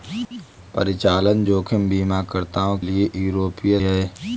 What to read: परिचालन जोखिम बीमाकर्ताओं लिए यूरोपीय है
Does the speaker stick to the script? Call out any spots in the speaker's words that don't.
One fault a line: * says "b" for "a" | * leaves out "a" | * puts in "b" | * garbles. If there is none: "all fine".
all fine